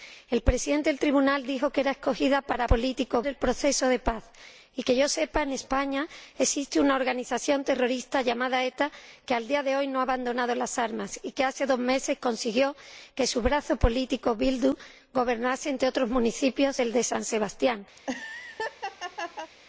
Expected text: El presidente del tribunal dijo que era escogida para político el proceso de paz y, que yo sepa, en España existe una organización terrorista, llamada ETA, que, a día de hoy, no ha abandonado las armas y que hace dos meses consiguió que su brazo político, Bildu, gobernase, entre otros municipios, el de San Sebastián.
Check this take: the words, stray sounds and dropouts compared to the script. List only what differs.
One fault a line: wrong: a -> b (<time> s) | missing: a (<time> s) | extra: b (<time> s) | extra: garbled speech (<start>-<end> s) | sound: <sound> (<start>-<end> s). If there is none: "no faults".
sound: laugh (18.0-19.5 s)